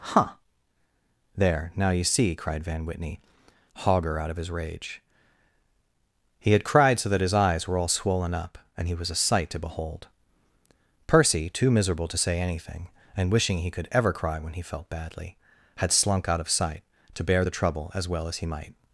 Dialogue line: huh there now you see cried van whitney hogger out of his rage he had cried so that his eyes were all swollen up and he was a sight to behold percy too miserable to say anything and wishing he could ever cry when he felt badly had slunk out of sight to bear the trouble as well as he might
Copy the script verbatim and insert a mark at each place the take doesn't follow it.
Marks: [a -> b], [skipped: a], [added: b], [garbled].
huh there now you see cried van whitney hogger out of his rage he had cried so that his eyes were all swollen up and he was a sight to behold percy too miserable to say anything and wishing he could ever cry when he felt badly had slunk out of sight to bear the trouble as well as he might